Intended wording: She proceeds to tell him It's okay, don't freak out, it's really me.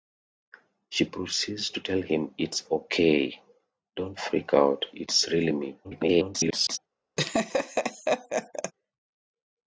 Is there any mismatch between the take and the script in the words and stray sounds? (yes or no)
yes